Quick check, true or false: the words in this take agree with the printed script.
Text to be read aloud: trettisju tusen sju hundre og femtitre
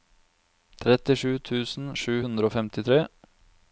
true